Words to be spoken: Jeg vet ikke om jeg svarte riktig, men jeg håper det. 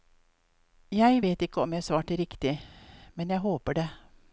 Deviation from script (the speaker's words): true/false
false